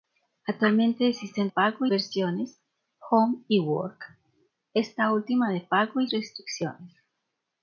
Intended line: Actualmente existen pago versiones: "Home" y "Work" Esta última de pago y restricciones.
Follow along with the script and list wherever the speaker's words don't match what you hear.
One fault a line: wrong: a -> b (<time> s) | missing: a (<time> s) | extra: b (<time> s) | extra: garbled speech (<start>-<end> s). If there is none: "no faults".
no faults